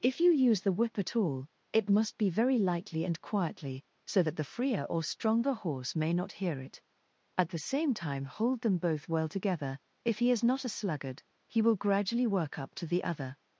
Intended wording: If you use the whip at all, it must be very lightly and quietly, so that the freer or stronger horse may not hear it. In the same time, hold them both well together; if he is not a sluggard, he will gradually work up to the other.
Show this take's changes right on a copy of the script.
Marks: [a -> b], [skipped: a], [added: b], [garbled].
If you use the whip at all, it must be very lightly and quietly, so that the freer or stronger horse may not hear it. [In -> At] the same time, hold them both well together; if he is not a sluggard, he will gradually work up to the other.